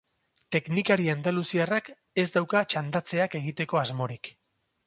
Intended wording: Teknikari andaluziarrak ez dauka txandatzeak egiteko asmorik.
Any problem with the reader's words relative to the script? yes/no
no